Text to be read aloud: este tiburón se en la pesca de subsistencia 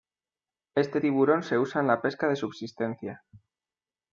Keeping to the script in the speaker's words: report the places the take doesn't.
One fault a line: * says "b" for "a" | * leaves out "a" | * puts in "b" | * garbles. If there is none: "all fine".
* puts in "usa"